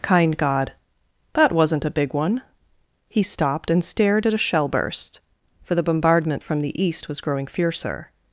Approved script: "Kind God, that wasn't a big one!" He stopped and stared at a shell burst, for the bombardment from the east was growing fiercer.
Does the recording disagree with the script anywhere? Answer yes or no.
no